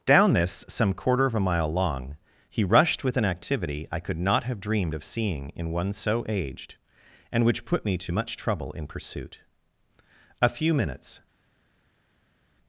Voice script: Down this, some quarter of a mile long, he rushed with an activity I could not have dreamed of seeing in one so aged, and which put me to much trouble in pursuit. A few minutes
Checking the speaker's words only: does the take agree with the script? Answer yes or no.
yes